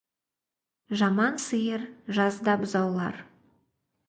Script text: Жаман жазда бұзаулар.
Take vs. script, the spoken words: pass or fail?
fail